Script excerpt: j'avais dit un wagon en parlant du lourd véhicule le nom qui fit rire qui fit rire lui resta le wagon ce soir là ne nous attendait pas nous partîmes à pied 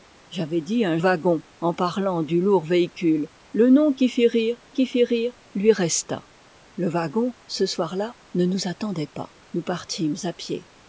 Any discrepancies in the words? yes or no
no